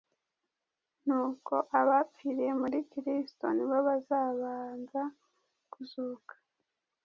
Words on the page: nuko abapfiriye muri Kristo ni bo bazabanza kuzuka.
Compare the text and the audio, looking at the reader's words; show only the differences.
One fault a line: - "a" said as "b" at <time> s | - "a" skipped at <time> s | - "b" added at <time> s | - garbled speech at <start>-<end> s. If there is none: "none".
none